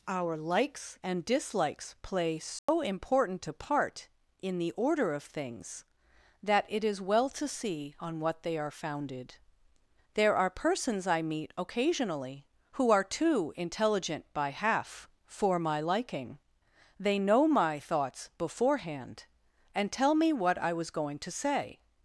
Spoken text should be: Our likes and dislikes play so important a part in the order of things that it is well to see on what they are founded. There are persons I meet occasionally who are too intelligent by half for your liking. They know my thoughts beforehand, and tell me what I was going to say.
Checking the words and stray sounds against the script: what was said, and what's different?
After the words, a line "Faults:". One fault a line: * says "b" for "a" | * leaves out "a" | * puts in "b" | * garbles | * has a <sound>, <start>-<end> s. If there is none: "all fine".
Our likes and dislikes play so important a part in the order of things that it is well to see on what they are founded. There are persons I meet occasionally who are too intelligent by half for my liking. They know my thoughts beforehand, and tell me what I was going to say.
Faults:
* has a dropout, 2.6-2.7 s
* says "my" for "your"